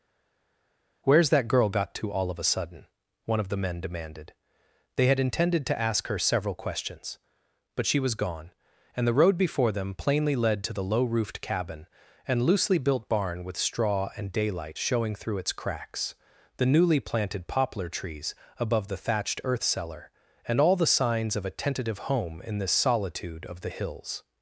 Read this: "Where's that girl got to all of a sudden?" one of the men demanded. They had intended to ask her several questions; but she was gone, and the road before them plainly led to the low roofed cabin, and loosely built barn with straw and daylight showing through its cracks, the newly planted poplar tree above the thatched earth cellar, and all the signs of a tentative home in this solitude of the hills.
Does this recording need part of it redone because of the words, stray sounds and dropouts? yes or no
yes